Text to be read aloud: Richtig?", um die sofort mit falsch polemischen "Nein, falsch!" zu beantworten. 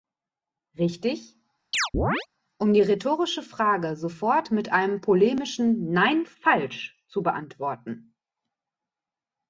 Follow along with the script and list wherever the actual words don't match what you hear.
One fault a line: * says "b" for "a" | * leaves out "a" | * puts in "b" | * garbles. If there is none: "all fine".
* puts in "rhetorische Frage"
* says "einem" for "falsch"